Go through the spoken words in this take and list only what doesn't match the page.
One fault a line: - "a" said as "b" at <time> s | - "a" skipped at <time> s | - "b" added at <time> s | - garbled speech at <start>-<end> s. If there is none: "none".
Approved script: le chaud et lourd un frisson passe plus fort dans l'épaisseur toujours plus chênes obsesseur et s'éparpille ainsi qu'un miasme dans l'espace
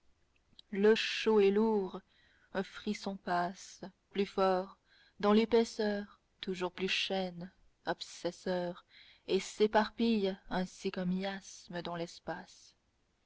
none